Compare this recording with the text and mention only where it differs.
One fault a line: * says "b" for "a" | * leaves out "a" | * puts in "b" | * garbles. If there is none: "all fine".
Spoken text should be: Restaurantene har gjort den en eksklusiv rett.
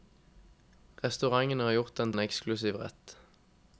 all fine